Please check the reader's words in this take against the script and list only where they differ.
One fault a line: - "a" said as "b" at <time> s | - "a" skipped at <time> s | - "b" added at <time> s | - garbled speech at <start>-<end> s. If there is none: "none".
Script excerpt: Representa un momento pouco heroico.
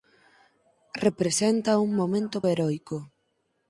- "pouco" skipped at 2.4 s